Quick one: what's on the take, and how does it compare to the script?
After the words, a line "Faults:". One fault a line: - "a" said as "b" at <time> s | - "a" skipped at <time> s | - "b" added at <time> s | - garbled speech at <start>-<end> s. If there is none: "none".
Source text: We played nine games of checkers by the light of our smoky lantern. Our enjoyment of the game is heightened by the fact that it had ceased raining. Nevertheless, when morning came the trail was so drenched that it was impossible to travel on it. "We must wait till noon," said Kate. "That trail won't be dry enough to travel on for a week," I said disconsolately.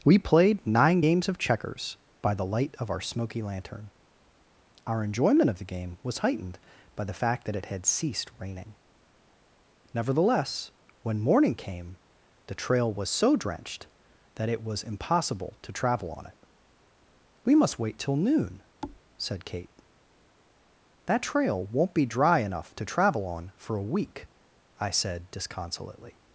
We played nine games of checkers by the light of our smoky lantern. Our enjoyment of the game was heightened by the fact that it had ceased raining. Nevertheless, when morning came the trail was so drenched that it was impossible to travel on it. "We must wait till noon," said Kate. "That trail won't be dry enough to travel on for a week," I said disconsolately.
Faults:
- "is" said as "was" at 6.0 s